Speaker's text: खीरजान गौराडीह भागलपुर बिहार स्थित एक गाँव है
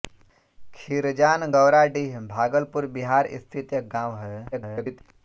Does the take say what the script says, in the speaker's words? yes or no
no